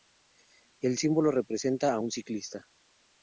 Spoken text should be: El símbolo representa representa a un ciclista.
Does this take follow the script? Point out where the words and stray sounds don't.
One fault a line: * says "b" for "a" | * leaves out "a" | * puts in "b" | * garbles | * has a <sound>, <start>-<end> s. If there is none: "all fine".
* leaves out "representa"